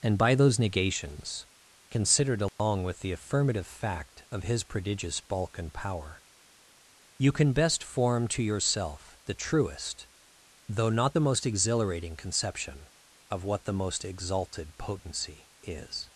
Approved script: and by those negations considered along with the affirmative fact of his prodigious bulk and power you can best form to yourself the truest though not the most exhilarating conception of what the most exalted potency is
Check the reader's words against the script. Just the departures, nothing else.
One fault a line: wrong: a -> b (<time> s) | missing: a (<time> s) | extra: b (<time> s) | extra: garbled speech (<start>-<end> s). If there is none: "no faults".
no faults